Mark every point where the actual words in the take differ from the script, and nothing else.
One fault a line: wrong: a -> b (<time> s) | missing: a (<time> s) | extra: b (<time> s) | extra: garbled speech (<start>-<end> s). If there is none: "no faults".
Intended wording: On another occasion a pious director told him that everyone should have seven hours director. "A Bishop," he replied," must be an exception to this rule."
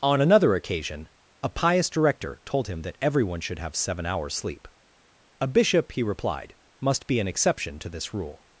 wrong: director -> sleep (4.3 s)